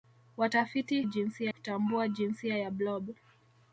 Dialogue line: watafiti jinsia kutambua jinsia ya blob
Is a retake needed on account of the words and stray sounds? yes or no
no